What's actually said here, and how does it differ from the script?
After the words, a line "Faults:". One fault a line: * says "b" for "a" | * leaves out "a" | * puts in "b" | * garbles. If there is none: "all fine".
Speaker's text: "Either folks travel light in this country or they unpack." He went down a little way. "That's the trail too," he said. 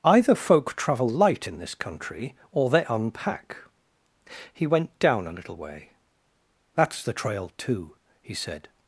"Either folk travel light in this country or they unpack." He went down a little way. "That's the trail too," he said.
Faults:
* says "folk" for "folks"